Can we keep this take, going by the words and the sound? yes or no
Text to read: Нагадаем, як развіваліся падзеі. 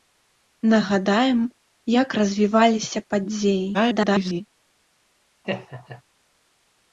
no